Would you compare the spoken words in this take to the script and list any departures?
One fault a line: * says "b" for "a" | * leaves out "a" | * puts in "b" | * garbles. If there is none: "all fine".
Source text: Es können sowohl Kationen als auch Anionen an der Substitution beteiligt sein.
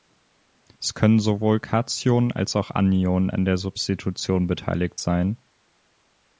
all fine